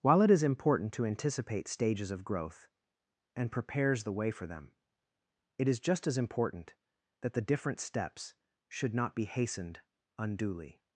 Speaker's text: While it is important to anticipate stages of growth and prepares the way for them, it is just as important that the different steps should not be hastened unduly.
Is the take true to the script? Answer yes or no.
yes